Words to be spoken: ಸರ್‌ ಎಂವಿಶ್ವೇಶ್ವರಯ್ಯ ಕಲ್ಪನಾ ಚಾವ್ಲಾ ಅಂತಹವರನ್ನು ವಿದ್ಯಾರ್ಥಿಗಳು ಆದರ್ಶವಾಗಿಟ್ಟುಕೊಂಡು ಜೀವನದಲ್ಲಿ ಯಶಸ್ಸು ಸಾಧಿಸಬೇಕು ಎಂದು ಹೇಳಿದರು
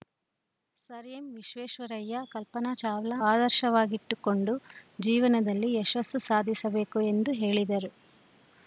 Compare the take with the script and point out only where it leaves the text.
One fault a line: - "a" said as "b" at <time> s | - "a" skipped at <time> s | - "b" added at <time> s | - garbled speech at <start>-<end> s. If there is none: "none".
- "ಅಂತಹವರನ್ನು ವಿದ್ಯಾರ್ಥಿಗಳು" skipped at 3.2 s